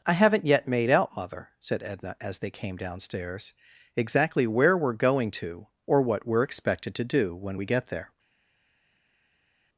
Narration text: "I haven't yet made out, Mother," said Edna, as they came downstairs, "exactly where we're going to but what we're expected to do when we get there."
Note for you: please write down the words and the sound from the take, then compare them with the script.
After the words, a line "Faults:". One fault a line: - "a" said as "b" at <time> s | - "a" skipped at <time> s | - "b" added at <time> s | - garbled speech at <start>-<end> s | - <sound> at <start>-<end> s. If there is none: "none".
"I haven't yet made out, Mother," said Edna, as they came downstairs, "exactly where we're going to or what we're expected to do when we get there."
Faults:
- "but" said as "or" at 5.8 s